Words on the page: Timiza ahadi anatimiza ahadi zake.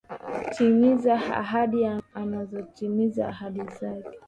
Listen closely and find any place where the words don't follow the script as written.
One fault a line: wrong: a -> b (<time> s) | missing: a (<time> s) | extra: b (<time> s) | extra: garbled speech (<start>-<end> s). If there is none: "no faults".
no faults